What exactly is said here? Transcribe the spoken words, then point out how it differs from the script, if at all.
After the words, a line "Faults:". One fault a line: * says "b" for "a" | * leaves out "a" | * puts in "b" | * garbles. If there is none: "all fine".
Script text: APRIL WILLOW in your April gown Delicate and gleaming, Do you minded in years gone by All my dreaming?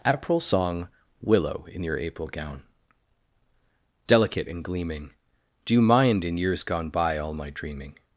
APRIL SONG WILLOW in your April gown Delicate and gleaming, Do you mind in years gone by All my dreaming?
Faults:
* puts in "SONG"
* says "mind" for "minded"